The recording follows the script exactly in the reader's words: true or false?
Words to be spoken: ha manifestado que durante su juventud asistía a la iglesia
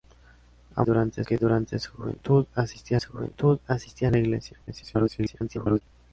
false